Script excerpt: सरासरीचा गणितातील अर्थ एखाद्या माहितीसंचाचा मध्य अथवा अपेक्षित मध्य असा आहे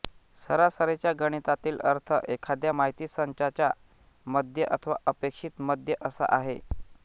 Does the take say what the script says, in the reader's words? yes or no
yes